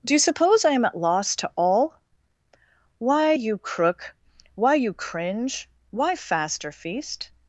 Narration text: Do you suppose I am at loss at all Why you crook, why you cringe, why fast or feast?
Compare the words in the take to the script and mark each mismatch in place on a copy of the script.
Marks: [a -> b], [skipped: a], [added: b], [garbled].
Do you suppose I am at loss [at -> to] all Why you crook, why you cringe, why fast or feast?